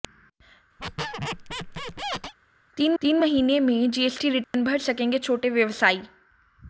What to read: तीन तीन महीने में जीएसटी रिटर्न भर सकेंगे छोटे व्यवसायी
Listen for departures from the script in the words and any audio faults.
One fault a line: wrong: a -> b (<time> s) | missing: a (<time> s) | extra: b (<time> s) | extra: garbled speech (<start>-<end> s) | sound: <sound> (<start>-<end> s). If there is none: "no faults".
sound: squeak (0.8-2.3 s)
sound: dropout (4.4-4.5 s)